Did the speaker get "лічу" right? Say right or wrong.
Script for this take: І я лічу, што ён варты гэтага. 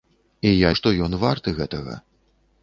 wrong